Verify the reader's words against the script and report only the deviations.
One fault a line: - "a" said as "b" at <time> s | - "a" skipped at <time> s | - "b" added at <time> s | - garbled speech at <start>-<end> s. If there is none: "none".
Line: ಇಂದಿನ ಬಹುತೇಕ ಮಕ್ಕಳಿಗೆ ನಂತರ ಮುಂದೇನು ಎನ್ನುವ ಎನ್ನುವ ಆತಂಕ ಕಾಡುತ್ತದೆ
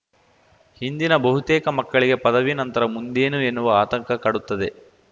- "ಪದವಿ" added at 2.2 s
- "ಎನ್ನುವ" skipped at 3.7 s